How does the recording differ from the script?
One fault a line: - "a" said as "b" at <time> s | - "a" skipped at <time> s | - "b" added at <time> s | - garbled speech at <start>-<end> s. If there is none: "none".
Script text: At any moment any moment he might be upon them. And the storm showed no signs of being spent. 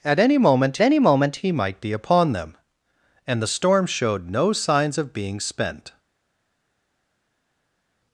none